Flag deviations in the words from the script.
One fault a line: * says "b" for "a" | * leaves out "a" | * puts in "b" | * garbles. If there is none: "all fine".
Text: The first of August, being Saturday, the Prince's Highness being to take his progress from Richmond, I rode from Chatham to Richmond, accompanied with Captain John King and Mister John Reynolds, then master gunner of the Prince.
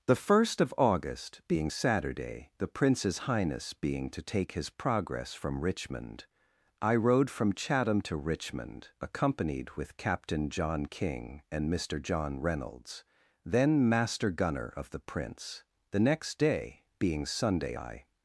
* puts in "The next day being Sunday I"